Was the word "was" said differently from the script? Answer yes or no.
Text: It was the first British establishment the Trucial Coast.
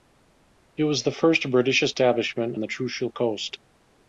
no